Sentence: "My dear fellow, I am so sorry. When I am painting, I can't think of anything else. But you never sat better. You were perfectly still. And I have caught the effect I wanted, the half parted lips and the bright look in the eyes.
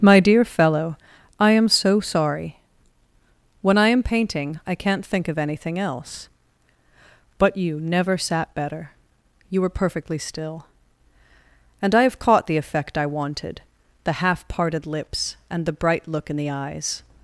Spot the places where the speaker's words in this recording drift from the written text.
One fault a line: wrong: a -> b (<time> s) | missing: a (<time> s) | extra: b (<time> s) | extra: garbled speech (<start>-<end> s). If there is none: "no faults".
no faults